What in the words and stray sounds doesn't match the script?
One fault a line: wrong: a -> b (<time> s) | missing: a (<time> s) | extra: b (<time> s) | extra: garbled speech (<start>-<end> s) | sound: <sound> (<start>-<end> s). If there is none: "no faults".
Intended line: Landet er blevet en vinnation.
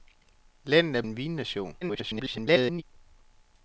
missing: blevet (1.0 s)
extra: garbled speech (1.8-2.8 s)